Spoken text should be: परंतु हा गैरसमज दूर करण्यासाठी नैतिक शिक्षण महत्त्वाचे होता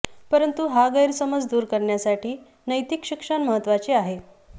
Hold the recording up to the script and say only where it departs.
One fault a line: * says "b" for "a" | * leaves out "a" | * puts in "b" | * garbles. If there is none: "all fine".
* says "आहे" for "होता"